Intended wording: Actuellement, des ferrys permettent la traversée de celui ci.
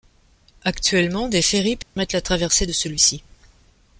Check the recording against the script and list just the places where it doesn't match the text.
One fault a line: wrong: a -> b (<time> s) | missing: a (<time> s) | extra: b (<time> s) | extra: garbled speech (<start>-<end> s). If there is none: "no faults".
no faults